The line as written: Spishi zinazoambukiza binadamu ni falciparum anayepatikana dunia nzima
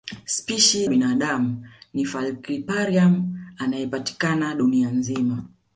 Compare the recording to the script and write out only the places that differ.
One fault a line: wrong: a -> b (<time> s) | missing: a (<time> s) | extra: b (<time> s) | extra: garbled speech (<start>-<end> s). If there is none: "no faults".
missing: zinazoambukiza (0.9 s)